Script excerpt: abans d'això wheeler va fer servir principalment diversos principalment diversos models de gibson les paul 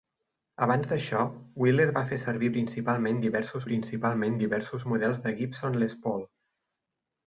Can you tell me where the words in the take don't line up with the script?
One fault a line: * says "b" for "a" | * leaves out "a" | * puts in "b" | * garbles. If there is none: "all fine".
all fine